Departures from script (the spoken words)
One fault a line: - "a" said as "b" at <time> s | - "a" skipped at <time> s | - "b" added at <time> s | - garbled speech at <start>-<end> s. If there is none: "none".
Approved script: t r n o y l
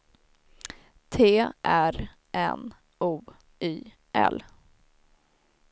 none